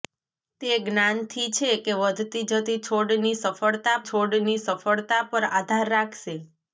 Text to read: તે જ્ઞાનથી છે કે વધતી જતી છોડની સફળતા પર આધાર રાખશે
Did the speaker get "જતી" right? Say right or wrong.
right